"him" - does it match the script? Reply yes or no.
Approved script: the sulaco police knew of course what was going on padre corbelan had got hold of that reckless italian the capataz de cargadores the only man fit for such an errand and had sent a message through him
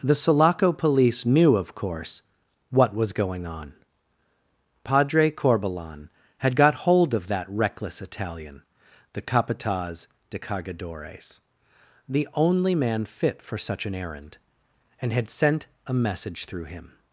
yes